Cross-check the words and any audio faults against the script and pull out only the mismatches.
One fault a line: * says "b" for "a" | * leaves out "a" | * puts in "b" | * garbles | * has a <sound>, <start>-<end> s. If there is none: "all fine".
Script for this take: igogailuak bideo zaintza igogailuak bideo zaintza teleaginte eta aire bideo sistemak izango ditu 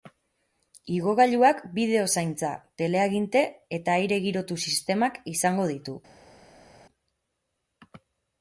* leaves out "igogailuak bideo zaintza"
* says "girotu" for "bideo"